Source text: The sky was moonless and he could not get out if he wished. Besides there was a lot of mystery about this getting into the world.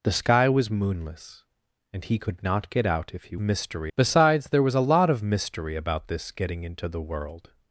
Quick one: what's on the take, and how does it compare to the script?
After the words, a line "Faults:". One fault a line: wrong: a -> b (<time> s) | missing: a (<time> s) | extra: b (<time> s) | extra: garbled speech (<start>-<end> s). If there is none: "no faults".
The sky was moonless and he could not get out if he mystery. Besides there was a lot of mystery about this getting into the world.
Faults:
wrong: wished -> mystery (3.4 s)